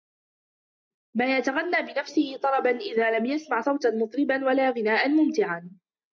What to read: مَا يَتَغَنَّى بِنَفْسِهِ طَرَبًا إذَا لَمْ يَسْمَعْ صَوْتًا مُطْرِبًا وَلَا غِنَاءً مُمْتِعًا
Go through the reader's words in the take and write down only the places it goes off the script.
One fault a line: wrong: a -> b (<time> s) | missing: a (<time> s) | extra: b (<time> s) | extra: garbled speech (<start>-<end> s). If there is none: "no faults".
no faults